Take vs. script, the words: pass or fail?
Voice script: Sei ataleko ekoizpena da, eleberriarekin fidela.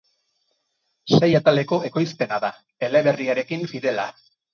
pass